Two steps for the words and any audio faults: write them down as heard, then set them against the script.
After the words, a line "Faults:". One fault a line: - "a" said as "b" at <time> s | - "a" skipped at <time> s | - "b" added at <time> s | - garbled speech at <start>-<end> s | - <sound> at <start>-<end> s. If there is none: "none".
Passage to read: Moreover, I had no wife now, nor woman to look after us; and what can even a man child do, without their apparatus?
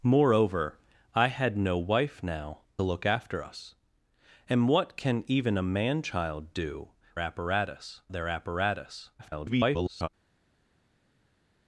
Moreover, I had no wife now, look after us; and what can even a man child do, apparatus their apparatus? [garbled]
Faults:
- "nor woman to" skipped at 2.6 s
- "without" said as "apparatus" at 7.2 s
- garbled speech at 9.2-10.1 s